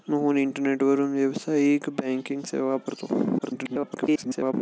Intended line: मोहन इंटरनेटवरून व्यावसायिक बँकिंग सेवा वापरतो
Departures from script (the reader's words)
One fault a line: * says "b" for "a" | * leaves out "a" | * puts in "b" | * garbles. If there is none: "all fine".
* garbles